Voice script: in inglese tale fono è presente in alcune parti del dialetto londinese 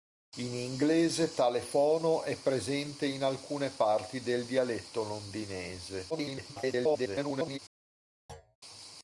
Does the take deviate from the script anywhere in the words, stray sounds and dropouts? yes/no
yes